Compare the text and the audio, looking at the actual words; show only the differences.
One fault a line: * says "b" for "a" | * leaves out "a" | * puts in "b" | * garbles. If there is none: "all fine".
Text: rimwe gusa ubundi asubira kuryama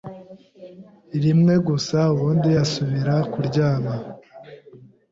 all fine